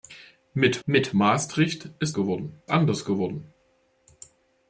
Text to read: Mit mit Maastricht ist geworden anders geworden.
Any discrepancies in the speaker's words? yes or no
no